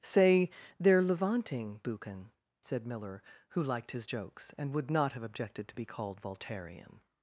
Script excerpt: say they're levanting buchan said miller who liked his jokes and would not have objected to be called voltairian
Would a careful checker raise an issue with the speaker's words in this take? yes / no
no